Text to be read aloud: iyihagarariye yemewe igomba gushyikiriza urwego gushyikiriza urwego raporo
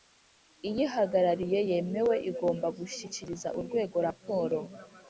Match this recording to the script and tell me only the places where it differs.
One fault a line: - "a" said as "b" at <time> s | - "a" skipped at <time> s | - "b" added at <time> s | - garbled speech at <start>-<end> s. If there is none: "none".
- "gushyikiriza urwego" skipped at 4.0 s